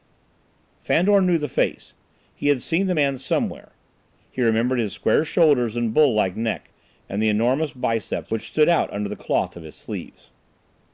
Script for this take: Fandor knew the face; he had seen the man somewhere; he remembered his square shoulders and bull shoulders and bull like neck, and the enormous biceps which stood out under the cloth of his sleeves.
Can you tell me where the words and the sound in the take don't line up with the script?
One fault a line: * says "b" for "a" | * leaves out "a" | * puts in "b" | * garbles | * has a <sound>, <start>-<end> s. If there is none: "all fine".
* leaves out "shoulders and bull"